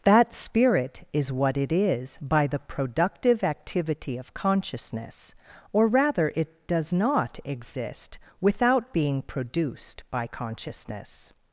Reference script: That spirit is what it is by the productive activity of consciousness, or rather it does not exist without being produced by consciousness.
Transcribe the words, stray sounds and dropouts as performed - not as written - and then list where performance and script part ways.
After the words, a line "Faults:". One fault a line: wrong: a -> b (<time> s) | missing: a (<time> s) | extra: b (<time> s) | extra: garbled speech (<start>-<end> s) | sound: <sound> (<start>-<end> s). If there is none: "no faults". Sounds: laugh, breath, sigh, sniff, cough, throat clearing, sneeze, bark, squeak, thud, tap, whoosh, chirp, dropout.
That spirit is what it is by the productive activity of consciousness, or rather it does not exist without being produced by consciousness.
Faults:
no faults